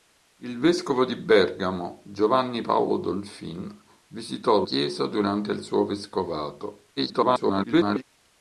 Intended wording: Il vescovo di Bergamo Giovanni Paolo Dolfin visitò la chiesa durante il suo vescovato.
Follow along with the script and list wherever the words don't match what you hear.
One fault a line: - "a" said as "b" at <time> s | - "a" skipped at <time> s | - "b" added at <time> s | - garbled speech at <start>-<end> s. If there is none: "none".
- "la" skipped at 4.7 s
- garbled speech at 7.0-8.0 s